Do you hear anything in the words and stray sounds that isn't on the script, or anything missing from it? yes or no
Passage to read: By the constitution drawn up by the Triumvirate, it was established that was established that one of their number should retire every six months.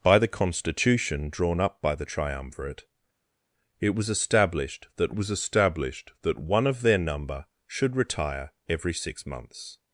no